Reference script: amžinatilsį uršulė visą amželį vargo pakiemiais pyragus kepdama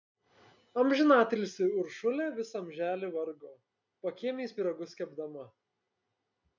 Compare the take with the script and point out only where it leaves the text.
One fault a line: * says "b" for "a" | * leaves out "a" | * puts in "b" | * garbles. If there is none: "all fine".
all fine